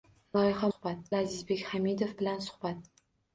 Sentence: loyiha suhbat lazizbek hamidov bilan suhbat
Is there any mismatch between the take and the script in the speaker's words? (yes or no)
no